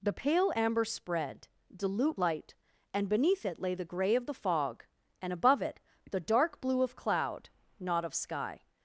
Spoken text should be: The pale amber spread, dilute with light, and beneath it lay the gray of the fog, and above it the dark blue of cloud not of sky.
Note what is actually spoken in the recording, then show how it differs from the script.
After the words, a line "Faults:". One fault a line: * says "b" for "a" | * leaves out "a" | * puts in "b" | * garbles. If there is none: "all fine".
The pale amber spread, dilute light, and beneath it lay the gray of the fog, and above it the dark blue of cloud not of sky.
Faults:
* leaves out "with"